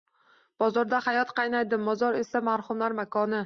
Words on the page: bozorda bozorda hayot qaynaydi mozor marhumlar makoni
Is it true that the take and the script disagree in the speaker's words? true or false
true